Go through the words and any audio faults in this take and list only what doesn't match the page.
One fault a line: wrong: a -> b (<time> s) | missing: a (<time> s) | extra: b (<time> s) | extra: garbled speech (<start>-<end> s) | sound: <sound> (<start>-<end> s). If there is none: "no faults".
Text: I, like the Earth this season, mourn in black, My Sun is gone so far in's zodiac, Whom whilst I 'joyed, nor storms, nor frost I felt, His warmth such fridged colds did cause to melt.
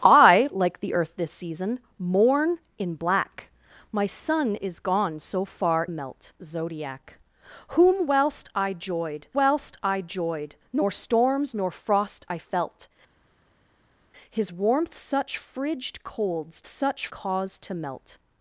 wrong: in's -> melt (5.9 s)
extra: whilst I joyed (9.3 s)
wrong: did -> such (16.7 s)